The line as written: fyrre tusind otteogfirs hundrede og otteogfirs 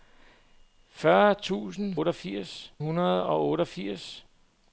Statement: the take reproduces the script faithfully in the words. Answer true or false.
true